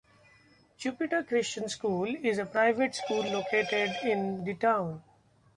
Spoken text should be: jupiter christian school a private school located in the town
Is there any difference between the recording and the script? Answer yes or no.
yes